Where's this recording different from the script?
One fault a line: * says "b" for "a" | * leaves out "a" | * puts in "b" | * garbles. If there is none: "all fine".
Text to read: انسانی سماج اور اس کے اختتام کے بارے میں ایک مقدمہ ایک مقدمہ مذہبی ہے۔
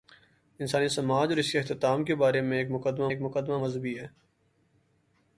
all fine